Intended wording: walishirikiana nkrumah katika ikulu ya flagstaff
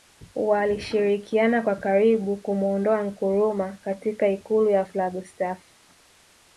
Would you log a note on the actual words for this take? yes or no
yes